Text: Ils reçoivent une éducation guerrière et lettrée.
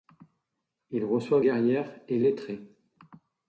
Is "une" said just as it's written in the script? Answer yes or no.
no